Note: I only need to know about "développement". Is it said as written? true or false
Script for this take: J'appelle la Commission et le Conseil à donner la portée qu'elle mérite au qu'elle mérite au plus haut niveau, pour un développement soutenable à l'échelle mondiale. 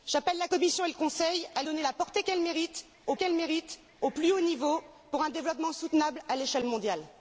true